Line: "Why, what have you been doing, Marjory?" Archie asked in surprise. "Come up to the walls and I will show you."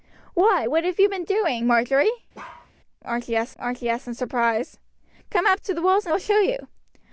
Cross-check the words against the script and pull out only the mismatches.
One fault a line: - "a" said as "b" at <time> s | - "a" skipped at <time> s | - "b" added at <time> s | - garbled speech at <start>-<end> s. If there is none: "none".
- "archie asked" added at 3.6 s
- "I" skipped at 6.1 s